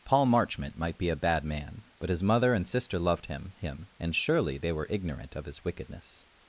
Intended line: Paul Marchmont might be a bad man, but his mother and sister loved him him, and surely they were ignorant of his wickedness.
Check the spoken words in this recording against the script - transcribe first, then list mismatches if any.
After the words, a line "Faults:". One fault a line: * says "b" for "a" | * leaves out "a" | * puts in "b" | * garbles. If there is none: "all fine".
Paul Marchmont might be a bad man, but his mother and sister loved him him, and surely they were ignorant of his wickedness.
Faults:
all fine